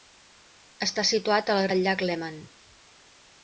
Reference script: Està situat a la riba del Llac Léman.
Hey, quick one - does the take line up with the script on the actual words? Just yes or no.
no